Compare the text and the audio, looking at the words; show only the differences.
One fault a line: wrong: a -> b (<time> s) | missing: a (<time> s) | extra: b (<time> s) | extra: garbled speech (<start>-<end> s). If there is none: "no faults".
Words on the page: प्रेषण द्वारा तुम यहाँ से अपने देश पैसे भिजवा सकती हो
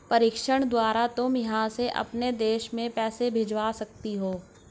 extra: में (2.7 s)